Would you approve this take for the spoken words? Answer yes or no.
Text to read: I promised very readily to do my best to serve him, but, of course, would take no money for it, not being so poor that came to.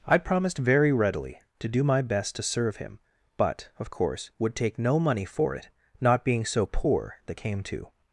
yes